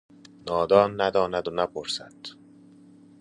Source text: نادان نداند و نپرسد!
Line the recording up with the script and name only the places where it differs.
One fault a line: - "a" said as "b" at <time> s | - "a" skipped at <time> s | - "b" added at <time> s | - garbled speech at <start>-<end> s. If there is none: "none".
none